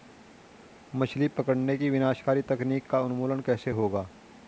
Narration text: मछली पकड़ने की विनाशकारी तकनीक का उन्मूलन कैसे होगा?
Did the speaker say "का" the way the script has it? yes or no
yes